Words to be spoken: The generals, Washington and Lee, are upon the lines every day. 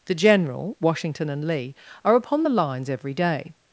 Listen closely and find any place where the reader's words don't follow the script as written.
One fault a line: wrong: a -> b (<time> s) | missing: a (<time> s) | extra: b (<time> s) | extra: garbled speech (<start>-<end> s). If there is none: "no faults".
wrong: generals -> general (0.1 s)